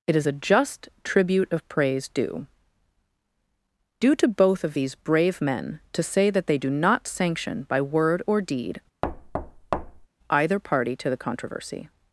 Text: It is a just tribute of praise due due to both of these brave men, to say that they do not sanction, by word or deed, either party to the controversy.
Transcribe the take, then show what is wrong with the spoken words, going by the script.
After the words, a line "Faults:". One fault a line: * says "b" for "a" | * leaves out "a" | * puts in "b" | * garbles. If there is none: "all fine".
It is a just tribute of praise due due to both of these brave men, to say that they do not sanction, by word or deed, either party to the controversy.
Faults:
all fine